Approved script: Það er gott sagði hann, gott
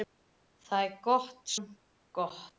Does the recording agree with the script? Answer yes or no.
no